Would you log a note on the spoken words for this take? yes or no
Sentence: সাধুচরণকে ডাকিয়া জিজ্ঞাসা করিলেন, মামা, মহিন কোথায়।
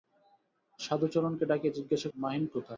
yes